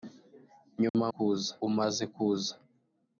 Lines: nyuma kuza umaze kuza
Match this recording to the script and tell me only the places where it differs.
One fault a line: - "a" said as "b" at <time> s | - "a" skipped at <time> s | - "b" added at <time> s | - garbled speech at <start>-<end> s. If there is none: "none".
none